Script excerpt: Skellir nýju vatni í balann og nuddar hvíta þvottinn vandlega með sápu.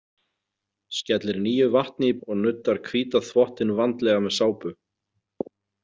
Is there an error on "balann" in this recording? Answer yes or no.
yes